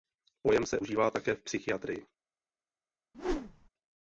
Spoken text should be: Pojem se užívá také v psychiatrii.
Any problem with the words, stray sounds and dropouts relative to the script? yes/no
yes